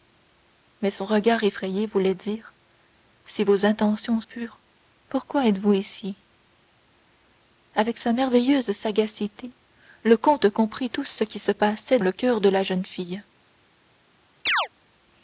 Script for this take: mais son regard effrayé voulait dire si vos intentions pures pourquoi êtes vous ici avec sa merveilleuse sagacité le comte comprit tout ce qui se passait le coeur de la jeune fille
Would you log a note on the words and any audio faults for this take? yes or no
yes